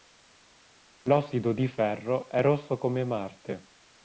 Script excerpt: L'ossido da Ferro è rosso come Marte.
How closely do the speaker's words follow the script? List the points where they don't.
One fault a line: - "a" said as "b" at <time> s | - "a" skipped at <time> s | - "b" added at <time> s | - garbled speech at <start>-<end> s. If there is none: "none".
- "da" said as "di" at 1.5 s